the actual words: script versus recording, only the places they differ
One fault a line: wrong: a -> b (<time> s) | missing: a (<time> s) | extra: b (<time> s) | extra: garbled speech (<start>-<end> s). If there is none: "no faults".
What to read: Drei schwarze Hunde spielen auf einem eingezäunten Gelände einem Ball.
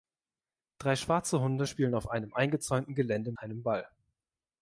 no faults